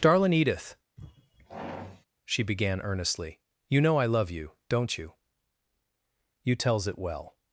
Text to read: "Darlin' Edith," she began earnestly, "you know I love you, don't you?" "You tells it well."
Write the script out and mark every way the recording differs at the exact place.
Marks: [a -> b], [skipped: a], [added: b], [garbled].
"Darlin' Edith," she began earnestly, "you know I love you, don't you?" "You tells it well."